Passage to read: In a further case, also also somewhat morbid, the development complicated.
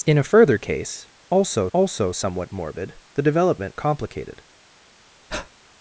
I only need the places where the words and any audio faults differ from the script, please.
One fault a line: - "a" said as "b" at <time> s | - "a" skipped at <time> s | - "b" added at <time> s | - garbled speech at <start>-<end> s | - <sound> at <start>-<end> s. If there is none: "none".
- breath at 5.3-5.5 s